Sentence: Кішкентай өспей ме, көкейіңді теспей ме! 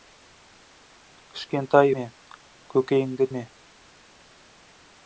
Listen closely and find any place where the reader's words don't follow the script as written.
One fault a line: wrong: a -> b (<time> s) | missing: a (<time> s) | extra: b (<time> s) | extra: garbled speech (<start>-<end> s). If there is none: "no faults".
missing: өспей (1.9 s)
missing: теспей (3.3 s)